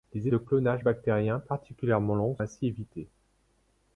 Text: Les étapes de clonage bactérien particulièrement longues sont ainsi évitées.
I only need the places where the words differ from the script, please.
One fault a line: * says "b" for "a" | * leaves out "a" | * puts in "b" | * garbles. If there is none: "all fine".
* leaves out "étapes"
* leaves out "sont"